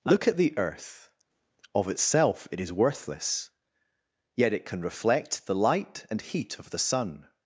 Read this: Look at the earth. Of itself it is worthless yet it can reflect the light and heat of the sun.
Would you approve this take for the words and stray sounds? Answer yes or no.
yes